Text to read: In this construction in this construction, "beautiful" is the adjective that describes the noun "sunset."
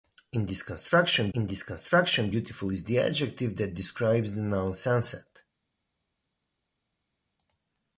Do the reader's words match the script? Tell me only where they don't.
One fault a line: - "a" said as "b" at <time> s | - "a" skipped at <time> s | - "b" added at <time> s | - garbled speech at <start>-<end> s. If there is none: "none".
none